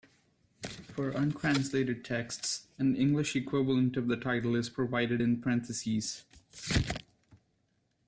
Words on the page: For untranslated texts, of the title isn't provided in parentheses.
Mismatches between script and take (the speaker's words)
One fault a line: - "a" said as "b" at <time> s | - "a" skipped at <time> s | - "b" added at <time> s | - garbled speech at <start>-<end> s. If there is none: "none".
- "an English equivalent" added at 2.8 s
- "isn't" said as "is" at 4.5 s